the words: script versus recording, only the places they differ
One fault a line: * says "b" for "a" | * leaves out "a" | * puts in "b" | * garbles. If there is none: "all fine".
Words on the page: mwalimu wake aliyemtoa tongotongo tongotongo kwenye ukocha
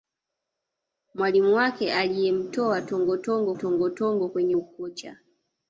all fine